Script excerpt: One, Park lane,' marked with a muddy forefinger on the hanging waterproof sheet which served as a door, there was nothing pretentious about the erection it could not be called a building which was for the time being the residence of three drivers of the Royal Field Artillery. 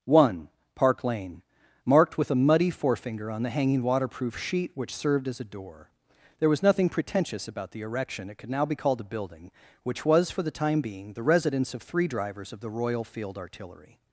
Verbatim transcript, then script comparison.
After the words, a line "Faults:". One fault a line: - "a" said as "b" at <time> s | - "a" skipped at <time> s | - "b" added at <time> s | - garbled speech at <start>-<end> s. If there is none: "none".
One, Park lane,' marked with a muddy forefinger on the hanging waterproof sheet which served as a door, there was nothing pretentious about the erection it could now be called a building which was for the time being the residence of three drivers of the Royal Field Artillery.
Faults:
- "not" said as "now" at 8.5 s